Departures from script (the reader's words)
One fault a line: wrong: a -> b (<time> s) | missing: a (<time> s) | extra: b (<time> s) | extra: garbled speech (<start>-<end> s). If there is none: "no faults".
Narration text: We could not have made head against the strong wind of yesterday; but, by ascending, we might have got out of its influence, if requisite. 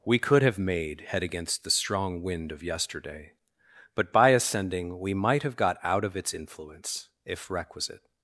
missing: not (0.4 s)